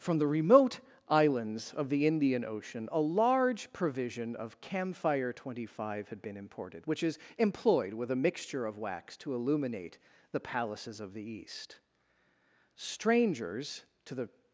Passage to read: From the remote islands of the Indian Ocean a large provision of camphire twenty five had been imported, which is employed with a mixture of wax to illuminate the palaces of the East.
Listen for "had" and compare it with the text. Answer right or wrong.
right